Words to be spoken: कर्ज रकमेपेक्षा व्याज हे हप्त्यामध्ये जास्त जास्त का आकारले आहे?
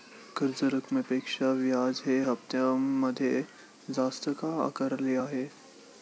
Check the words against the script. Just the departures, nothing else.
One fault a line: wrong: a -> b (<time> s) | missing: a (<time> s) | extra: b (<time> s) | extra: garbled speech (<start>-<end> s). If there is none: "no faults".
missing: जास्त (4.3 s)